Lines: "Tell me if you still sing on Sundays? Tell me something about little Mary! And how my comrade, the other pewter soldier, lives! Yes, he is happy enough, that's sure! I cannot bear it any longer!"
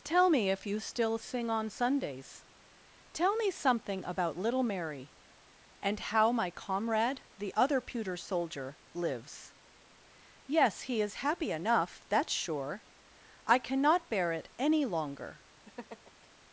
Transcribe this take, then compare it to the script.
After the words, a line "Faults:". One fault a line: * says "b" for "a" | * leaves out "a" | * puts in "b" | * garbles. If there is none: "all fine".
"Tell me if you still sing on Sundays? Tell me something about little Mary! And how my comrade, the other pewter soldier, lives! Yes, he is happy enough, that's sure! I cannot bear it any longer!"
Faults:
all fine